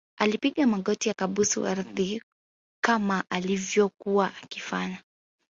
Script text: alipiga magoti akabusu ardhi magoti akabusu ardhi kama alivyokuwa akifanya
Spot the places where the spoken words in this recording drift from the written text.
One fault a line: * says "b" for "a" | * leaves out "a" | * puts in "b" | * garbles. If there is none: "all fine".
* leaves out "magoti akabusu ardhi"